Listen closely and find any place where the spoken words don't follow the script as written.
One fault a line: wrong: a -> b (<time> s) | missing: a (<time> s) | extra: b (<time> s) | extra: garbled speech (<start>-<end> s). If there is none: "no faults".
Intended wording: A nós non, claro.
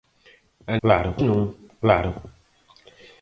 wrong: nós -> claro (0.8 s)